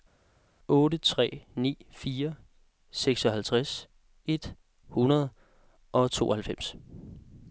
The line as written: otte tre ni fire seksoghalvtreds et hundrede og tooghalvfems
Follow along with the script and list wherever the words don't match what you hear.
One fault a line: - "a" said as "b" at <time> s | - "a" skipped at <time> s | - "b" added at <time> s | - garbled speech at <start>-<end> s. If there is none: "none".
none